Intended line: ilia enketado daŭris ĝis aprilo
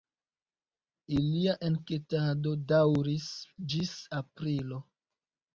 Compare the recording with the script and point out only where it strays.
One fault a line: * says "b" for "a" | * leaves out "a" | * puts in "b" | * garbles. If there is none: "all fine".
all fine